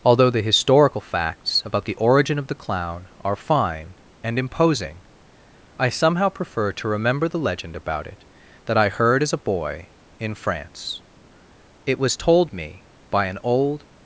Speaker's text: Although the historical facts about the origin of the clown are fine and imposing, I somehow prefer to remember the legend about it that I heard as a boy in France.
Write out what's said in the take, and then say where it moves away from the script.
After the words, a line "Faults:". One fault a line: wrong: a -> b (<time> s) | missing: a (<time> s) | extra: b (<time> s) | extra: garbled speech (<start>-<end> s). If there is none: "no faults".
Although the historical facts about the origin of the clown are fine and imposing, I somehow prefer to remember the legend about it that I heard as a boy in France. It was told me by an old
Faults:
extra: It was told me by an old (11.8 s)